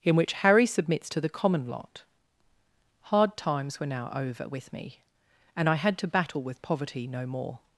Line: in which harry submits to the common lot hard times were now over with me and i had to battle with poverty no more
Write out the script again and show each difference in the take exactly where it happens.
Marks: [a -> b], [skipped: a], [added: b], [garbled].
in which harry submits to the common lot hard times were now over with me and i had to battle with poverty no more